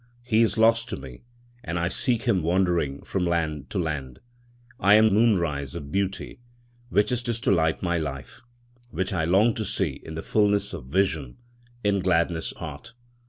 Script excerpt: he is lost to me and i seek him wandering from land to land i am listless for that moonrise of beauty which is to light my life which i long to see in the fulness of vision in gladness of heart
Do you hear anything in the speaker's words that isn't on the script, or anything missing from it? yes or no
yes